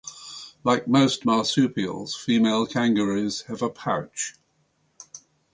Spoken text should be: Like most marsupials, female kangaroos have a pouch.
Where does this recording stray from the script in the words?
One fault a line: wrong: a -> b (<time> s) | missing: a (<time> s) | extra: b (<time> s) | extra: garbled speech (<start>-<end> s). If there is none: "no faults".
no faults